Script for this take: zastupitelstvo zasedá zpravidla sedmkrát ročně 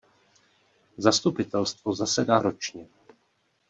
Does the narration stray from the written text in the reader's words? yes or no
yes